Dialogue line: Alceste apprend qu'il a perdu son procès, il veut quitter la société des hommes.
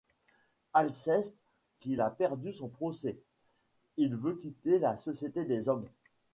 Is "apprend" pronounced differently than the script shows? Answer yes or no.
yes